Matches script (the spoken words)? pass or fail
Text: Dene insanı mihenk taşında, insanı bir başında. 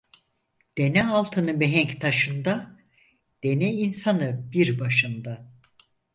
fail